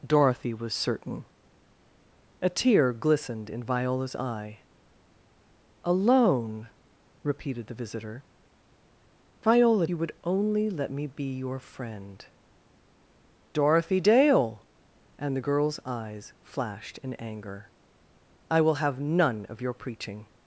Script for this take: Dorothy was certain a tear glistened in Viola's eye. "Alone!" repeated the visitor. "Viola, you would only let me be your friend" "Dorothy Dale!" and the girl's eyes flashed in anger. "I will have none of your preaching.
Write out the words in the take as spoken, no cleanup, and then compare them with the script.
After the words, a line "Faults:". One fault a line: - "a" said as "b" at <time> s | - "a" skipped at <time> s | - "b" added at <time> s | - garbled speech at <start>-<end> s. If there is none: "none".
Dorothy was certain a tear glistened in Viola's eye. "Alone!" repeated the visitor. "Viola, you would only let me be your friend" "Dorothy Dale!" and the girl's eyes flashed in anger. "I will have none of your preaching.
Faults:
none